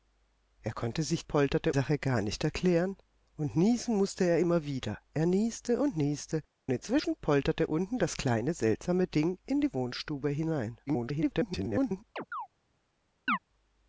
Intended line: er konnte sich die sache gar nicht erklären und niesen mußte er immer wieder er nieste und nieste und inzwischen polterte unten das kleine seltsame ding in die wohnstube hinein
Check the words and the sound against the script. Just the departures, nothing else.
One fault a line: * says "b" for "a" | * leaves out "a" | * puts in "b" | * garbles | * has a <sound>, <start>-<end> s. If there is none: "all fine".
* says "polterte" for "die"
* leaves out "und"
* garbles
* has a chirp, 12.2-12.5 s
* has a chirp, 13.3-13.4 s